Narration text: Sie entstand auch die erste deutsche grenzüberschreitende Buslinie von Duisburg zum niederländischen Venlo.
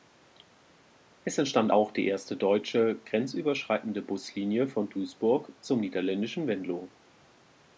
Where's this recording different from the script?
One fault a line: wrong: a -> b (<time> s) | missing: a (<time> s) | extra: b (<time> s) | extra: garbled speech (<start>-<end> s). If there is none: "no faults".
wrong: Sie -> Es (1.2 s)